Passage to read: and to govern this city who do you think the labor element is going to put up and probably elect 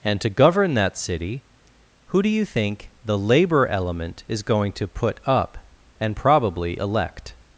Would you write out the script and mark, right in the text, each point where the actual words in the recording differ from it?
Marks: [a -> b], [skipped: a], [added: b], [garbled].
and to govern [this -> that] city who do you think the labor element is going to put up and probably elect